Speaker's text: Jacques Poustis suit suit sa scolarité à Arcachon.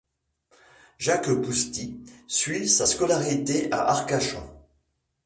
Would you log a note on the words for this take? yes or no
yes